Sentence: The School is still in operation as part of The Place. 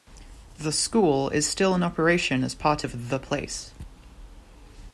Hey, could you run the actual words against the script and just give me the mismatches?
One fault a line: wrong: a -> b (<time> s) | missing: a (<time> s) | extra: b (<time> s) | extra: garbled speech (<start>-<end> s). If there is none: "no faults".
no faults